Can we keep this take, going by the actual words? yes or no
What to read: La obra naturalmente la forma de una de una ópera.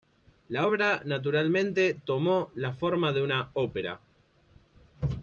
no